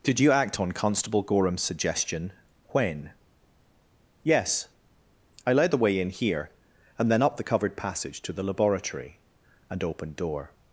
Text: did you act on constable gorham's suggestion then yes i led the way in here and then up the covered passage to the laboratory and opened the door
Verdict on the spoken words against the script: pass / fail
fail